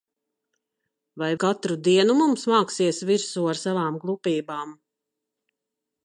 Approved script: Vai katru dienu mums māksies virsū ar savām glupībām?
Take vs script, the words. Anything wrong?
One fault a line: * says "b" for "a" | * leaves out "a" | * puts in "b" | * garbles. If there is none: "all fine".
all fine